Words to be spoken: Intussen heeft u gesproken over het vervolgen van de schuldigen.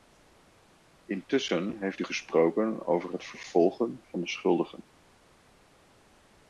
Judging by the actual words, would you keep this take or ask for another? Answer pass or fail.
pass